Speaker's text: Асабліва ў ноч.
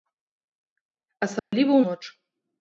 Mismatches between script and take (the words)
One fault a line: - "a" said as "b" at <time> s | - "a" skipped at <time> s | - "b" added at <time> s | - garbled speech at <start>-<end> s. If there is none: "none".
none